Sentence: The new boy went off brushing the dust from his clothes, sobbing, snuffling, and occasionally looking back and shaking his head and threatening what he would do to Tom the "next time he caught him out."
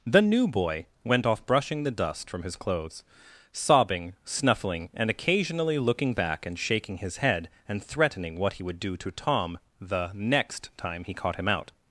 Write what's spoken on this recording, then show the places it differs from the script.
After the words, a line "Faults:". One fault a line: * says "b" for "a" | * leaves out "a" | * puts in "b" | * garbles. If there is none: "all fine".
The new boy went off brushing the dust from his clothes, sobbing, snuffling, and occasionally looking back and shaking his head and threatening what he would do to Tom the "next time he caught him out."
Faults:
all fine